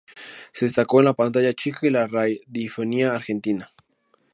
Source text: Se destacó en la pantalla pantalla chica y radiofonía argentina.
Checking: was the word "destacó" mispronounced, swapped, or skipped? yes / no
no